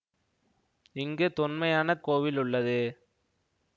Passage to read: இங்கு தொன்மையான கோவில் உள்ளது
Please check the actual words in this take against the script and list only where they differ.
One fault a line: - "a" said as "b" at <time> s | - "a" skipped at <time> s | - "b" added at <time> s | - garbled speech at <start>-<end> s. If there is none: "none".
none